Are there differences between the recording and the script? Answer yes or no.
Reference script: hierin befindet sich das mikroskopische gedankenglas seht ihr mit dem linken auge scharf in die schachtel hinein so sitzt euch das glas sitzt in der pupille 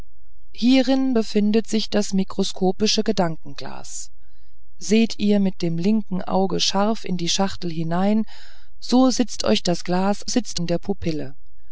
no